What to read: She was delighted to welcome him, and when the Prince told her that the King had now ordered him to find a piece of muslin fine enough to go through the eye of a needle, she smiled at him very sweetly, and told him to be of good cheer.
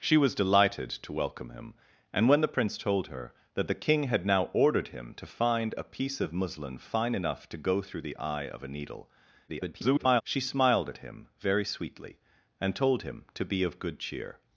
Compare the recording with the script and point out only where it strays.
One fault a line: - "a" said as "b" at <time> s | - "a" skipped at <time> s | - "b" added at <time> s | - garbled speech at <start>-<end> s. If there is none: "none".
- garbled speech at 9.5-10.2 s